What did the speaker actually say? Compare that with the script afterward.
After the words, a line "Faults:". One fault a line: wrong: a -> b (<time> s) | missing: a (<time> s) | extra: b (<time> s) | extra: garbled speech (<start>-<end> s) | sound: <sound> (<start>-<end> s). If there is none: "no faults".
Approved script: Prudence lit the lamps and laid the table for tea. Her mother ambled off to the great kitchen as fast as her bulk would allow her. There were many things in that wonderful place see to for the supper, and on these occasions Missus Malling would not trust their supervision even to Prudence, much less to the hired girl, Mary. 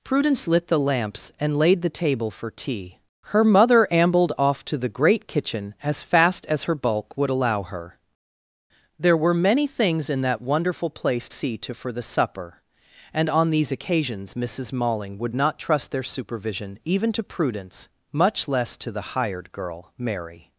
Prudence lit the lamps and laid the table for tea. Her mother ambled off to the great kitchen as fast as her bulk would allow her. There were many things in that wonderful place see to for the supper, and on these occasions Missus Malling would not trust their supervision even to Prudence, much less to the hired girl, Mary.
Faults:
no faults